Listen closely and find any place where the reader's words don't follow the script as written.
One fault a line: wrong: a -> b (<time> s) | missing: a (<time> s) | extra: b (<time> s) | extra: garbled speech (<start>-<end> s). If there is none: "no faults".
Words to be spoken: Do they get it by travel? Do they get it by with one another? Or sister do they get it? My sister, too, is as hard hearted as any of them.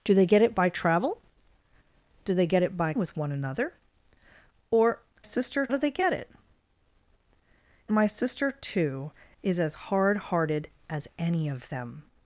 no faults